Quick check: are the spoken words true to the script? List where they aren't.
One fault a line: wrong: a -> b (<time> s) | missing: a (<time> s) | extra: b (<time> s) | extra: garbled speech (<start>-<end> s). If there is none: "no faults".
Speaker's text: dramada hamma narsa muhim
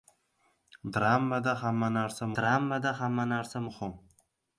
extra: dramada hamma narsa (2.4 s)